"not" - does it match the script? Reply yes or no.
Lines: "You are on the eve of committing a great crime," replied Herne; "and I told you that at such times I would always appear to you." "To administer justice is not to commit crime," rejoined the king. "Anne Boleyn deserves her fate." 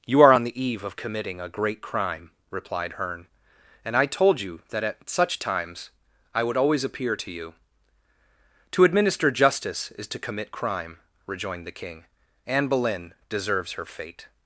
no